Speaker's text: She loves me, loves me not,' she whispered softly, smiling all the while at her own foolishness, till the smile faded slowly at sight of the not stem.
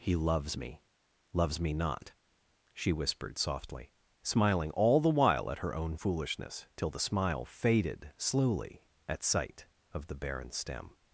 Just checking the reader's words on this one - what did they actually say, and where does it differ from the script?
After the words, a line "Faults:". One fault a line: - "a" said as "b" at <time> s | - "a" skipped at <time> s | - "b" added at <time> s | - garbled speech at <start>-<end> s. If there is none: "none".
He loves me, loves me not,' she whispered softly, smiling all the while at her own foolishness, till the smile faded slowly at sight of the barren stem.
Faults:
- "She" said as "He" at 0.0 s
- "not" said as "barren" at 10.1 s